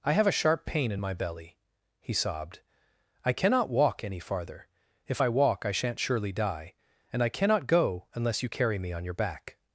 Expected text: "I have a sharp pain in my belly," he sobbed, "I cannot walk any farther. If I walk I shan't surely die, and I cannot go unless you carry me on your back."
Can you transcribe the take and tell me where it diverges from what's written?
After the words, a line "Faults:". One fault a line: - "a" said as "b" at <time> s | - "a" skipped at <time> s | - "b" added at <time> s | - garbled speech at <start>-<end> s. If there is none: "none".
"I have a sharp pain in my belly," he sobbed, "I cannot walk any farther. If I walk I shan't surely die, and I cannot go unless you carry me on your back."
Faults:
none